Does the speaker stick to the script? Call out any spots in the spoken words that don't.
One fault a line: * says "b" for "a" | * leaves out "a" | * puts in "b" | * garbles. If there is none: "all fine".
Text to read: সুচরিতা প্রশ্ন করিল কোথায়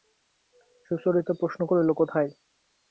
all fine